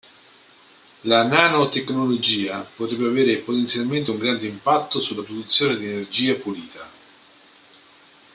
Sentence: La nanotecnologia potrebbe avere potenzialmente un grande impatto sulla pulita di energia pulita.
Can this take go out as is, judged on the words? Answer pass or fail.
fail